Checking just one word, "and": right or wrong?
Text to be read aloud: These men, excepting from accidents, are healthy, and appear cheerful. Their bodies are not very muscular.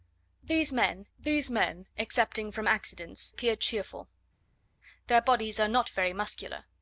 wrong